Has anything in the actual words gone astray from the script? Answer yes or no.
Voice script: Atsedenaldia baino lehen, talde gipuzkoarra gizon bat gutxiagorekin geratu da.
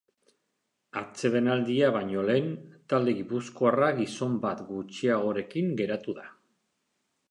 no